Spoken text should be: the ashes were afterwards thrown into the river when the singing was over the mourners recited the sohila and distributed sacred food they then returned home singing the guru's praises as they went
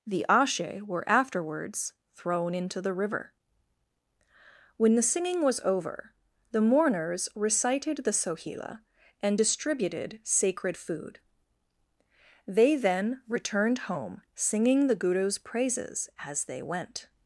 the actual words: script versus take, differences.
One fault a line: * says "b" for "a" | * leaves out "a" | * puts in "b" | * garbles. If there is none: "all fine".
* says "ashe" for "ashes"